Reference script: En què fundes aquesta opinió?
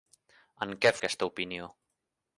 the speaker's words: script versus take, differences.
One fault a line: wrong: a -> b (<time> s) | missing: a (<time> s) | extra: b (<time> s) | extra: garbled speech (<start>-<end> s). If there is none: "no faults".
missing: fundes (0.9 s)